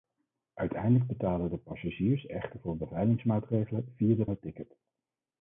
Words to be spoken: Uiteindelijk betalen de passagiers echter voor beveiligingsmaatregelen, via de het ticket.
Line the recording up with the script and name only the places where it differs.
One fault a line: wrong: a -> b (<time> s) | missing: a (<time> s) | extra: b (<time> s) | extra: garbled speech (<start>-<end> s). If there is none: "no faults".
no faults